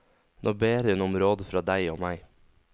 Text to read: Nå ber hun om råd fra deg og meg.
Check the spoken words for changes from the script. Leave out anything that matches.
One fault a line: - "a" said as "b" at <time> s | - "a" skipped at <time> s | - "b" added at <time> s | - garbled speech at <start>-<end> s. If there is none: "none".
none